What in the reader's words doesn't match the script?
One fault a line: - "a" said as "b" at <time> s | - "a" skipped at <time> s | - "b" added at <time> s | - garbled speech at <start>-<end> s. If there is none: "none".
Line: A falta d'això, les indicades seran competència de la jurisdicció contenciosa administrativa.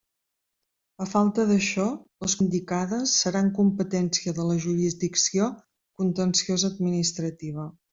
none